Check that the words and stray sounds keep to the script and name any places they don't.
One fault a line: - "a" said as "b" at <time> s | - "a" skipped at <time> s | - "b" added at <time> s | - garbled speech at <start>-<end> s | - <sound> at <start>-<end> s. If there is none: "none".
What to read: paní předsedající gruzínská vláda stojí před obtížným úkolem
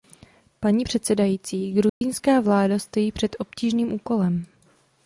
- dropout at 1.9-2.0 s